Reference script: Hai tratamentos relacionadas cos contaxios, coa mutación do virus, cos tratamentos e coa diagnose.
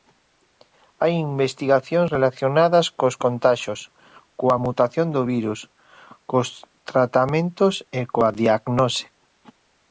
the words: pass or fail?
fail